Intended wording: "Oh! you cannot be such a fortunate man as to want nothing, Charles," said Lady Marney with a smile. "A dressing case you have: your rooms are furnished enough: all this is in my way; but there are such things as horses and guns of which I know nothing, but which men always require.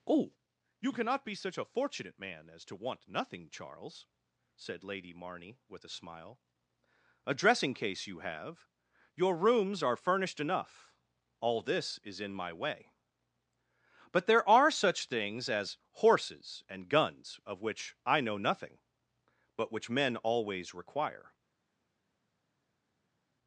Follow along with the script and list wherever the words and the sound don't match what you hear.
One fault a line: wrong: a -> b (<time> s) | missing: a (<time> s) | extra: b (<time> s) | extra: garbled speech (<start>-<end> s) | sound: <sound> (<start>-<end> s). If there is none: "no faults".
no faults